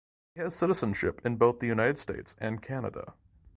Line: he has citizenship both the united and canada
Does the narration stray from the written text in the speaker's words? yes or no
yes